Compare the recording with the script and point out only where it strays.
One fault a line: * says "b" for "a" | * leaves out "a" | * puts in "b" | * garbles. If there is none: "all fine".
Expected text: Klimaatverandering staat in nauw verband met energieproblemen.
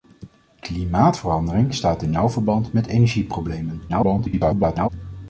* garbles